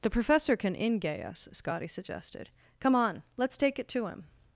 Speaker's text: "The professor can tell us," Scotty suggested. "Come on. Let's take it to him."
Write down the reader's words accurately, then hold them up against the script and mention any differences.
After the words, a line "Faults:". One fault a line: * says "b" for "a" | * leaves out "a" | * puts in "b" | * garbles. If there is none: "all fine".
"The professor can ingay us," Scotty suggested. "Come on. Let's take it to him."
Faults:
* says "ingay" for "tell"